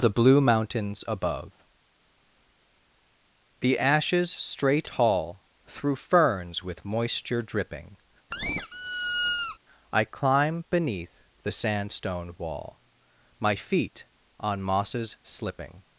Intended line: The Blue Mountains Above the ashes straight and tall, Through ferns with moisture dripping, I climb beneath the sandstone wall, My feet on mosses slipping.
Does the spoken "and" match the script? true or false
false